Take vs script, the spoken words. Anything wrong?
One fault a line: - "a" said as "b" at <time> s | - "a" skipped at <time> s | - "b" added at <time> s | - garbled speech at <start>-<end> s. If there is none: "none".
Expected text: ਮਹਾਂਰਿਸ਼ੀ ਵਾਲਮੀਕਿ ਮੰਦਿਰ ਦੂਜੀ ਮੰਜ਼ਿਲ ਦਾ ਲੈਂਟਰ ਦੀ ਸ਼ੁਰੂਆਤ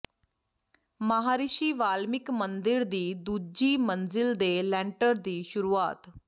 - "ਦੀ" added at 2.9 s
- "ਦਾ" said as "ਦੇ" at 4.3 s